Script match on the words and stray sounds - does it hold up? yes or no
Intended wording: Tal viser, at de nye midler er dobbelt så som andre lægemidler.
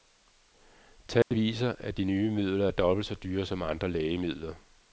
no